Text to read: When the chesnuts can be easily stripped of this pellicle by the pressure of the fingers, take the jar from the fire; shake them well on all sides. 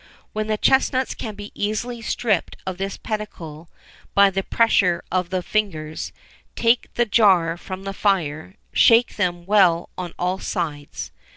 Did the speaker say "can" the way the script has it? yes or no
yes